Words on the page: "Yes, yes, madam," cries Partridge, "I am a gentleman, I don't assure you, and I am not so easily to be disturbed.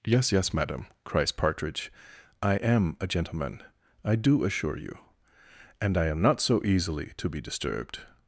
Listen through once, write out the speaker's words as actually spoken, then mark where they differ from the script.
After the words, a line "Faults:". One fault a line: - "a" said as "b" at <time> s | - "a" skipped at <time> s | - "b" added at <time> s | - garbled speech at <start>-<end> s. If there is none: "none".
"Yes, yes, madam," cries Partridge, "I am a gentleman, I do assure you, and I am not so easily to be disturbed.
Faults:
- "don't" said as "do" at 4.1 s